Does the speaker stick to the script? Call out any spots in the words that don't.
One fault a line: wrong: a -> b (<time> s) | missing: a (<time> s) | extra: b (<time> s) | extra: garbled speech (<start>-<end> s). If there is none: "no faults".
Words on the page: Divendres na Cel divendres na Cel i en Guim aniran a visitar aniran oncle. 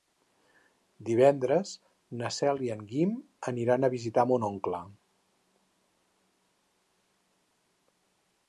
missing: divendres na Cel (2.6 s)
wrong: aniran -> mon (4.3 s)